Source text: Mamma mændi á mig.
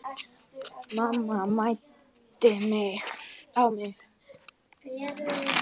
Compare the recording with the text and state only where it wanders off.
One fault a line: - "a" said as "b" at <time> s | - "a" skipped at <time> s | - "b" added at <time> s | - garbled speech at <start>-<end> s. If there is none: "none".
none